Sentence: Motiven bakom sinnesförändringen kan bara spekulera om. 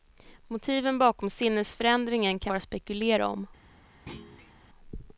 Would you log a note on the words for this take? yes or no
no